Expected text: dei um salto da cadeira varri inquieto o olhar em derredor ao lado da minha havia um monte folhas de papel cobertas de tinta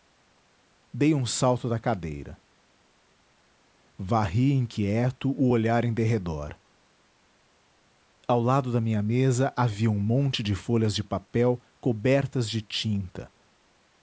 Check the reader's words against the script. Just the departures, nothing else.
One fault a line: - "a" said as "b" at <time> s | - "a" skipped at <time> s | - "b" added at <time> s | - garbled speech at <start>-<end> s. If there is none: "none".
- "mesa" added at 9.0 s
- "de" added at 10.4 s